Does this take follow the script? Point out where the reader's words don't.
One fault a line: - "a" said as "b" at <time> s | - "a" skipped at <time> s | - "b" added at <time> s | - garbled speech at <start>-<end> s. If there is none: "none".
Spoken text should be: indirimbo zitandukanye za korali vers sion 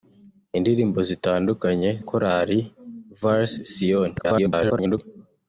- "za" skipped at 1.9 s
- garbled speech at 4.2-5.0 s